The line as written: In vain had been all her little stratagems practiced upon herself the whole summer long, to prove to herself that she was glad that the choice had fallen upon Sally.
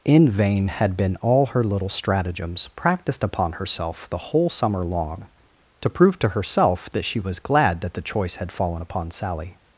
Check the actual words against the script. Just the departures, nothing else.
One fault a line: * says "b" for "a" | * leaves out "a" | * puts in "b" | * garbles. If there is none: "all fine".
all fine